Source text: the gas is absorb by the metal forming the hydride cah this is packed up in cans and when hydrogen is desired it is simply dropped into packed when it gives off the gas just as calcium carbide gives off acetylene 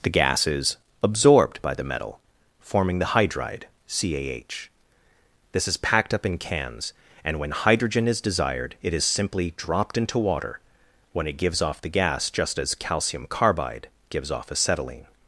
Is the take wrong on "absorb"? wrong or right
wrong